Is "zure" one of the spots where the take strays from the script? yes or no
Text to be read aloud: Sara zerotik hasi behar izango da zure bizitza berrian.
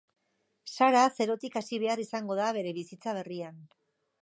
yes